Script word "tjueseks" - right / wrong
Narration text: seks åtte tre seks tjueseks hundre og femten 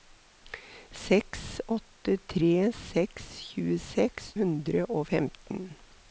right